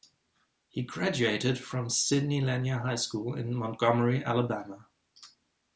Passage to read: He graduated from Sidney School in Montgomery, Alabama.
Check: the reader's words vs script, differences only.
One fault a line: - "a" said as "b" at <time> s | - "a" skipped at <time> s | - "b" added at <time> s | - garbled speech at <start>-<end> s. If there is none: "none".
- "Lanier High" added at 2.4 s